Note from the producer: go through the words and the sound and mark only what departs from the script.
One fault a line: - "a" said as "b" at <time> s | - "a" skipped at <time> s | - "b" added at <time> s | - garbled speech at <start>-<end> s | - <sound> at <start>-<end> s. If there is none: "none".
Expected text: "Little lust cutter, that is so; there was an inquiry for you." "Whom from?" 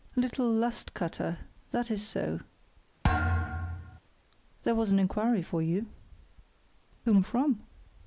- thud at 3.0-4.0 s